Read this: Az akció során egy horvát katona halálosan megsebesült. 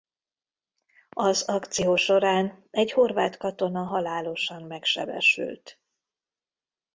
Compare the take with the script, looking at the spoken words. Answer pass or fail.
pass